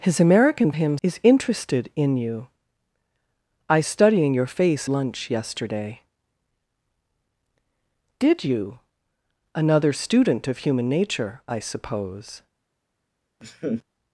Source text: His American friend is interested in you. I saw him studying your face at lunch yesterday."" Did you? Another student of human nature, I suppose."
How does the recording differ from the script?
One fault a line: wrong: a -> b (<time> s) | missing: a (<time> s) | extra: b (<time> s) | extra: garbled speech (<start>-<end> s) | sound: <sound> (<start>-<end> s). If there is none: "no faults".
wrong: friend -> him (0.7 s)
missing: saw him (3.8 s)
missing: at (4.9 s)
sound: laugh (13.4-13.8 s)